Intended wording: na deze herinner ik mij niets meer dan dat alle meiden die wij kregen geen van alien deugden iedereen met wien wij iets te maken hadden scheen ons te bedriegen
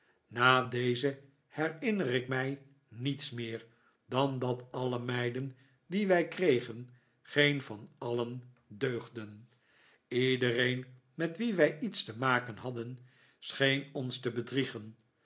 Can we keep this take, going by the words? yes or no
yes